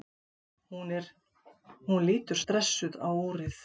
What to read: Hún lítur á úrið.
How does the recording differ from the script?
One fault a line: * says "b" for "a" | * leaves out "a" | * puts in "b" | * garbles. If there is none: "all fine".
* puts in "stressuð"